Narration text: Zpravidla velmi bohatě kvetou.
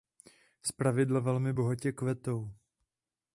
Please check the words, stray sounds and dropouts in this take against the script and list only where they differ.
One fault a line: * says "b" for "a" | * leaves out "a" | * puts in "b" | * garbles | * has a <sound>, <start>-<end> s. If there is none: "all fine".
all fine